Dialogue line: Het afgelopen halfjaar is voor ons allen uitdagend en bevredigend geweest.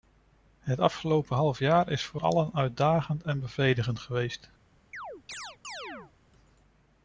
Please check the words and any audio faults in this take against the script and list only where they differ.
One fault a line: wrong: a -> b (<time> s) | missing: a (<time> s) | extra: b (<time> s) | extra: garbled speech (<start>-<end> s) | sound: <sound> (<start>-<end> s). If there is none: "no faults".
missing: ons (2.2 s)
sound: chirp (4.9-6.1 s)